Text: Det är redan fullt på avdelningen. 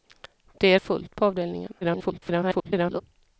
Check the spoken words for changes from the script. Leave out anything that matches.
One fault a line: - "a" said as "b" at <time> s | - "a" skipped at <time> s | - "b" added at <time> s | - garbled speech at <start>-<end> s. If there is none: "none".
- "redan" skipped at 0.8 s
- garbled speech at 1.8-3.0 s